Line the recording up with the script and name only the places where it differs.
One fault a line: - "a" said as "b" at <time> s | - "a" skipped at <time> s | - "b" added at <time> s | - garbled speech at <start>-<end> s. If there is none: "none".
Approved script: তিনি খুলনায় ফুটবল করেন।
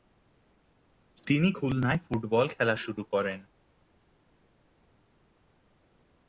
- "খেলা শুরু" added at 2.5 s